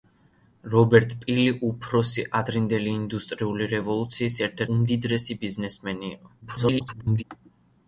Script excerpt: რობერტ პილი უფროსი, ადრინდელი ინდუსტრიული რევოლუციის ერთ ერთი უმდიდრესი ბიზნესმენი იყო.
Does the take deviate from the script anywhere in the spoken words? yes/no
yes